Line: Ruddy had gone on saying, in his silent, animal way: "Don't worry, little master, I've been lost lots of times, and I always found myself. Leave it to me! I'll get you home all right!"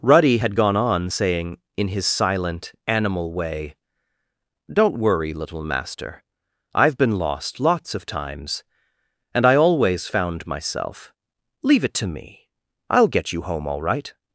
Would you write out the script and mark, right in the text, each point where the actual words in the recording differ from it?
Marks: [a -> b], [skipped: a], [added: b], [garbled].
Ruddy had gone on saying, in his silent, animal way: "Don't worry, little master, I've been lost lots of times, and I always found myself. Leave it to me! I'll get you home all right!"